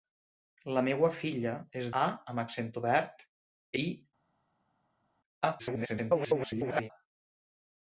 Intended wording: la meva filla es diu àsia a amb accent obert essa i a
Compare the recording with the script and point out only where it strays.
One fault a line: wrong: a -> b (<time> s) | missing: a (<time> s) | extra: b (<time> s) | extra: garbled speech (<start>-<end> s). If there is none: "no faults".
missing: diu àsia (1.9 s)
missing: essa (3.2 s)
extra: garbled speech (5.6-6.9 s)